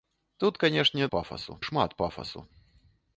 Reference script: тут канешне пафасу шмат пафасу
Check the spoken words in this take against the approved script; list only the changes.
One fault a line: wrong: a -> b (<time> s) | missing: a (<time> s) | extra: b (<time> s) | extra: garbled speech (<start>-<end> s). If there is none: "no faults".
no faults